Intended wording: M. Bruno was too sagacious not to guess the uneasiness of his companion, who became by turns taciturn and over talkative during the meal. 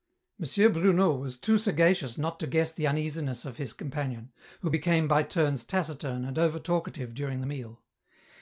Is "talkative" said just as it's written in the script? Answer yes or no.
yes